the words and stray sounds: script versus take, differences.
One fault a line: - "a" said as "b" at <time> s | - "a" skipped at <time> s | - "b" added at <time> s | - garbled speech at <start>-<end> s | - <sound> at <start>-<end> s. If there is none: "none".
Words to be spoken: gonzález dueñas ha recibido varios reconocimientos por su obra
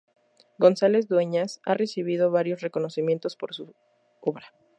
none